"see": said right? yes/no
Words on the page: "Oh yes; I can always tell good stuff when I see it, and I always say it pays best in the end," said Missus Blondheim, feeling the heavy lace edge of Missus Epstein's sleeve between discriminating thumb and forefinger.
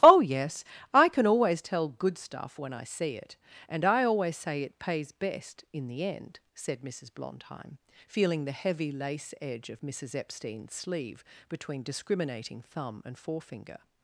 yes